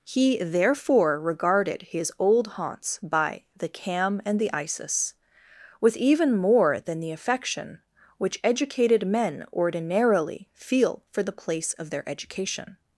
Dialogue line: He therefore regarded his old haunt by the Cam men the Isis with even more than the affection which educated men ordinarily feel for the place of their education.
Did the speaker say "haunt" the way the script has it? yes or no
no